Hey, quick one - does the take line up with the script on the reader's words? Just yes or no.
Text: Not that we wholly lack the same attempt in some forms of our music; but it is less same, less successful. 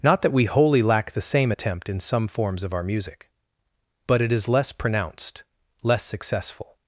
no